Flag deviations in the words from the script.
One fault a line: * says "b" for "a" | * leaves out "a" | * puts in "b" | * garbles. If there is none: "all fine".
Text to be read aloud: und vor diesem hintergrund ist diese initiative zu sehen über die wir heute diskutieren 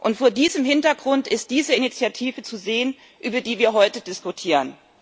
all fine